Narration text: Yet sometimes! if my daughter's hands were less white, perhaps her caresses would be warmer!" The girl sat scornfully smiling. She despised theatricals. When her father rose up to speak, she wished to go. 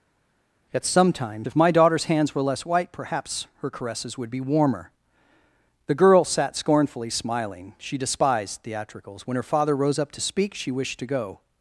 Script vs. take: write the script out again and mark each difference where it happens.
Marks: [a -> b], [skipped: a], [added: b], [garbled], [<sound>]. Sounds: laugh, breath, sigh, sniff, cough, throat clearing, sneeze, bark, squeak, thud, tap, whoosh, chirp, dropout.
Yet sometimes! if my daughter's hands were less white, perhaps her caresses would be warmer!" The girl sat scornfully smiling. She despised theatricals. When her father rose up to speak, she wished to go.